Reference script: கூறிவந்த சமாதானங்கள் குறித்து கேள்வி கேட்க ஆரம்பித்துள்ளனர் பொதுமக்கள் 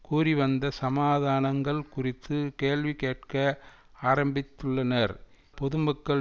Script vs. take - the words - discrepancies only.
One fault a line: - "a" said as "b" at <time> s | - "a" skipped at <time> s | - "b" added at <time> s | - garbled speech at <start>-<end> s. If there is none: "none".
none